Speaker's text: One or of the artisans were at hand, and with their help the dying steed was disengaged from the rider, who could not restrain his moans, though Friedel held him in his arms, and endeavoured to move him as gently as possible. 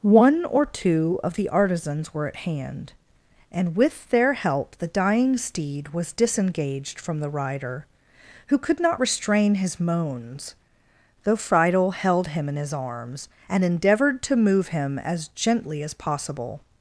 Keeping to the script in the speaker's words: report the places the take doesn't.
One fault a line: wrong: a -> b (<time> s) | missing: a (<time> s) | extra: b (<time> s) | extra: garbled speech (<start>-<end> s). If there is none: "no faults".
extra: two (0.7 s)